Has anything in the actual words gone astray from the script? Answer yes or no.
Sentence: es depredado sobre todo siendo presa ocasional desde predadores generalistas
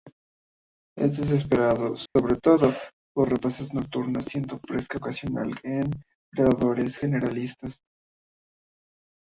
yes